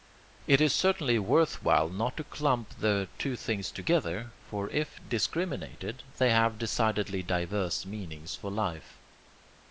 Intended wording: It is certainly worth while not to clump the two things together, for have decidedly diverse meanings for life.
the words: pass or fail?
fail